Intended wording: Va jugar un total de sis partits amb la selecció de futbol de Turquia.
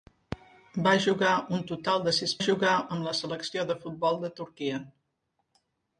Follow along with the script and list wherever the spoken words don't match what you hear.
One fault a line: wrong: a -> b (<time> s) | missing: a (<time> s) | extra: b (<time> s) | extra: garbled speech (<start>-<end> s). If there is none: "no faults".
wrong: partits -> jugar (2.4 s)